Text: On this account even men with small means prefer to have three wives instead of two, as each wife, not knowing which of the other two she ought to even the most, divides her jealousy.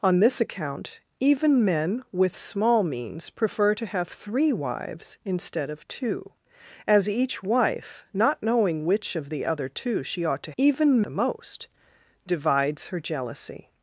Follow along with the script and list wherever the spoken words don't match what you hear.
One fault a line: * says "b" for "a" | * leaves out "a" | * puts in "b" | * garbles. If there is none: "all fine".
all fine